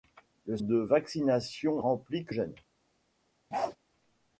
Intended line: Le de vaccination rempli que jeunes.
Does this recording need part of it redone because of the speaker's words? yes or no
no